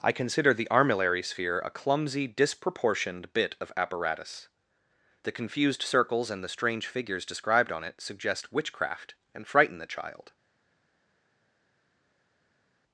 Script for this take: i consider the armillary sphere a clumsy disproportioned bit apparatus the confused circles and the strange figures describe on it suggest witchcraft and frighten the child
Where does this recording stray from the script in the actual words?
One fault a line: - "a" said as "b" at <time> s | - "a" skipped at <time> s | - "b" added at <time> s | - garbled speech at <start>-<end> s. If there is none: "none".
- "of" added at 3.6 s
- "describe" said as "described" at 7.2 s